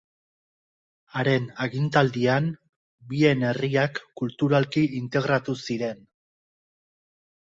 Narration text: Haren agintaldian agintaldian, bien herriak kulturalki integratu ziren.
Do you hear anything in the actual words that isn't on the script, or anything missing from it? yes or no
yes